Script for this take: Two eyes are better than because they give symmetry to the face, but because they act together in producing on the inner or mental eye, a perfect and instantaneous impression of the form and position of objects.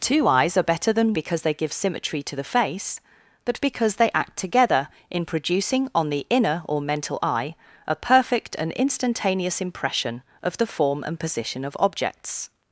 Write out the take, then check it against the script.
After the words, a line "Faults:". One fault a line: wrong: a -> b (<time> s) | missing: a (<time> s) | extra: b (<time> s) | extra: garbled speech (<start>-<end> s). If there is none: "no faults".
Two eyes are better than because they give symmetry to the face, but because they act together in producing on the inner or mental eye, a perfect and instantaneous impression of the form and position of objects.
Faults:
no faults